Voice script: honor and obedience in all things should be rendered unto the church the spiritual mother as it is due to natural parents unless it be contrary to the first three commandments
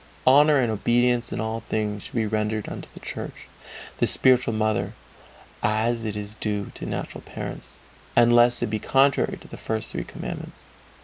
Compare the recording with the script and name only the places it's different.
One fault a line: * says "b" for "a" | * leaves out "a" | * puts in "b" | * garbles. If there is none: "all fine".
all fine